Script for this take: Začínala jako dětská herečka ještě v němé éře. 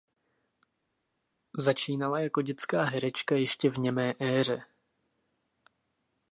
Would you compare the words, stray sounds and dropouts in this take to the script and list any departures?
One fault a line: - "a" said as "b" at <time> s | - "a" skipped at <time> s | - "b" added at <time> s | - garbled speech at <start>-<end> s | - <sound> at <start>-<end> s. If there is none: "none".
none